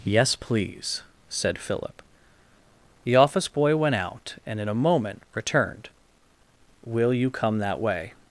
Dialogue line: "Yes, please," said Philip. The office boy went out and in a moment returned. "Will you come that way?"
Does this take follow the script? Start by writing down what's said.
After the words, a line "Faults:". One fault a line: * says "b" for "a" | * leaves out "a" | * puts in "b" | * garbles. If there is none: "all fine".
"Yes, please," said Philip. The office boy went out and in a moment returned. "Will you come that way?"
Faults:
all fine